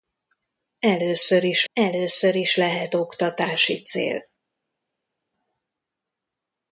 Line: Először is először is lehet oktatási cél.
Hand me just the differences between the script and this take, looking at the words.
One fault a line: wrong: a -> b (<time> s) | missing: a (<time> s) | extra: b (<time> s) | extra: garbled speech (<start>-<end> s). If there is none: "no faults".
no faults